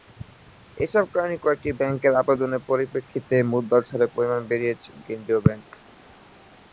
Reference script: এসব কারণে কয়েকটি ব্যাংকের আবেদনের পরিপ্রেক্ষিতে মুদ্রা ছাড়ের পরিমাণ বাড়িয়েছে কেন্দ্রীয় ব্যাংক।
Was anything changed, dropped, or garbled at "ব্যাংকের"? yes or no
no